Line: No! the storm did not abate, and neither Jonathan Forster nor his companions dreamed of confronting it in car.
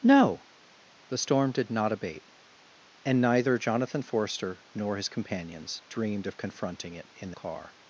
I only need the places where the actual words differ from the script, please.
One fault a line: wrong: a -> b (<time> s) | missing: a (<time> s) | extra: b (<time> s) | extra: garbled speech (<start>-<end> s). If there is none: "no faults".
no faults